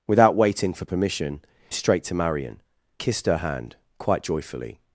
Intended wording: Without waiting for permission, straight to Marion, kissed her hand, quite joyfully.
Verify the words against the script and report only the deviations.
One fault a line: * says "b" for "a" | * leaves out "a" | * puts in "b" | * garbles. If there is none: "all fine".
all fine